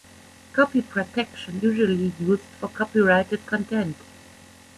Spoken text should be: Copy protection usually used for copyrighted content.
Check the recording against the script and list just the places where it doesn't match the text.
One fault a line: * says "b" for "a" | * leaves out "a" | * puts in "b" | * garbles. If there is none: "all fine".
all fine